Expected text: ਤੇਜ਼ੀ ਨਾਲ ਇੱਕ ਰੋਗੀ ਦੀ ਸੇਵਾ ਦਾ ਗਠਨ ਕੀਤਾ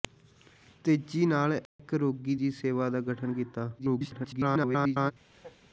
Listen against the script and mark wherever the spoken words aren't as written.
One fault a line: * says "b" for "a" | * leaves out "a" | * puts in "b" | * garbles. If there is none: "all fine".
* garbles